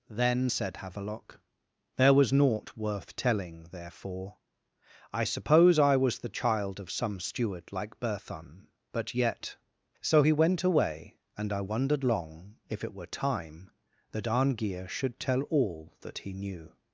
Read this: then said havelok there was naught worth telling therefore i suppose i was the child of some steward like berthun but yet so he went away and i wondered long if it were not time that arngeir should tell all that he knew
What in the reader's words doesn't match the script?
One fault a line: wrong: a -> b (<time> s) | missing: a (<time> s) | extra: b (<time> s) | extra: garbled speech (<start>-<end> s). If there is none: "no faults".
missing: not (13.1 s)